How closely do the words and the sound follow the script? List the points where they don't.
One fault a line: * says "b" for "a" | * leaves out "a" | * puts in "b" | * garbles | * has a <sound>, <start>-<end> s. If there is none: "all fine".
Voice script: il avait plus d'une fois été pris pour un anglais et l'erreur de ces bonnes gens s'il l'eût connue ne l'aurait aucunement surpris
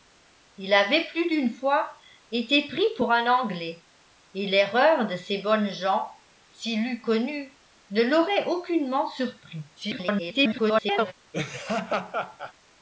* garbles
* has a laugh, 11.3-12.5 s